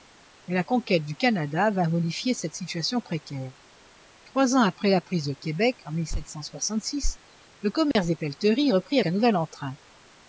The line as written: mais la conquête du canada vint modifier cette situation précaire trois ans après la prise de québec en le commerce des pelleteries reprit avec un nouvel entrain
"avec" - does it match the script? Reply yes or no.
no